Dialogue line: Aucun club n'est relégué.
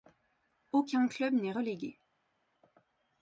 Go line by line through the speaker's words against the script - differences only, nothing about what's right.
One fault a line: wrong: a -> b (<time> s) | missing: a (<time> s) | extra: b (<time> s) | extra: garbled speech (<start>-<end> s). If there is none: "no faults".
no faults